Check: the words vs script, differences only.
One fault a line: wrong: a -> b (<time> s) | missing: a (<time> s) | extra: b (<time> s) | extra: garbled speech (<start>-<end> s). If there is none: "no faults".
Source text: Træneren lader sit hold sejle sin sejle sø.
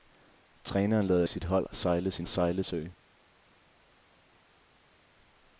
no faults